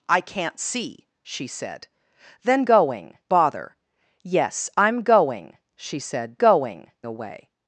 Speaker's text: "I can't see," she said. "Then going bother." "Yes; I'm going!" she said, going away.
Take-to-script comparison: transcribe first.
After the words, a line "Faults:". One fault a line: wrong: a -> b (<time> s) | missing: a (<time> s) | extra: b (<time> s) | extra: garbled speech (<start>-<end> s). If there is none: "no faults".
"I can't see," she said. "Then going bother." "Yes; I'm going!" she said, going away.
Faults:
no faults